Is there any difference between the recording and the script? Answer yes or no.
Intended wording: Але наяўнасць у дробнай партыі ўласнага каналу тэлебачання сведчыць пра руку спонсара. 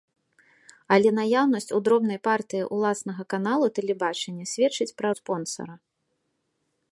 yes